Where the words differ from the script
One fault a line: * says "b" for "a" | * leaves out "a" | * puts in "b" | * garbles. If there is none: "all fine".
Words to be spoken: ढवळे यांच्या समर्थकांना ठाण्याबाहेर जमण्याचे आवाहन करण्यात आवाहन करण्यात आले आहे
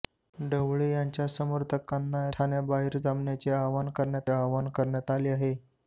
all fine